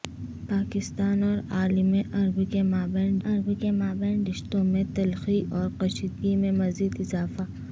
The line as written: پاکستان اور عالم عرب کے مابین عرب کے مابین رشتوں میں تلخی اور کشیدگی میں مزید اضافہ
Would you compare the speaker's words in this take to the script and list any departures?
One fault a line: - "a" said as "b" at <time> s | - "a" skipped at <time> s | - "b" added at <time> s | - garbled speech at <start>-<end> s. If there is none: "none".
none